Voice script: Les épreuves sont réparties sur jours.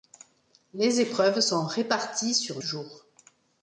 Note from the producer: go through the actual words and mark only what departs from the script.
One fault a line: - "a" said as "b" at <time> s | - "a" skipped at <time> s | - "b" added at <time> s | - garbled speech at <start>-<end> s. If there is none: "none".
none